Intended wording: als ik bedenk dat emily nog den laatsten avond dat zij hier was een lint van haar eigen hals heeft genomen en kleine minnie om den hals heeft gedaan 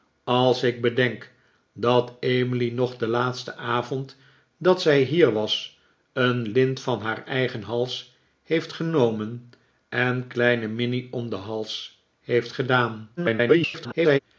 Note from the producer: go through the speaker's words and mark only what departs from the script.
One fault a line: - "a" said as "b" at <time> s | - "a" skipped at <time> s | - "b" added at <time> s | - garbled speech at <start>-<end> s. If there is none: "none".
- garbled speech at 13.2-14.2 s